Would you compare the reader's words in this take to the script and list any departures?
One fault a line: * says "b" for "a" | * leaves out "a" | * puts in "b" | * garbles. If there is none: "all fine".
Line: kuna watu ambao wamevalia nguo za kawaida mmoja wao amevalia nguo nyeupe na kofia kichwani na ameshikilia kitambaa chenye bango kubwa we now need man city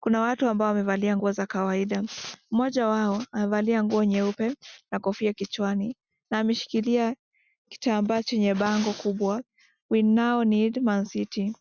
all fine